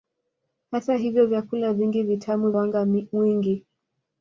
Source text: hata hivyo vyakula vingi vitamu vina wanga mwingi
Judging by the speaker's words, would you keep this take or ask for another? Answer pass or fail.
fail